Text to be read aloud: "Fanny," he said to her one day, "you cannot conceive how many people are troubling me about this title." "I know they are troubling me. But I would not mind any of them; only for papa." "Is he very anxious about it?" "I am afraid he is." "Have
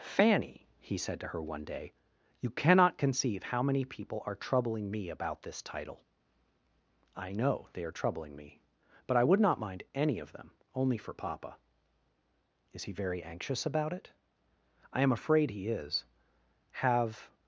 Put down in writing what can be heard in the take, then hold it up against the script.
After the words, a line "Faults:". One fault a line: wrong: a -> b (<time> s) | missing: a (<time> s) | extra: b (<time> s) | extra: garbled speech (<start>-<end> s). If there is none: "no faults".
"Fanny," he said to her one day, "you cannot conceive how many people are troubling me about this title." "I know they are troubling me. But I would not mind any of them; only for papa." "Is he very anxious about it?" "I am afraid he is." "Have
Faults:
no faults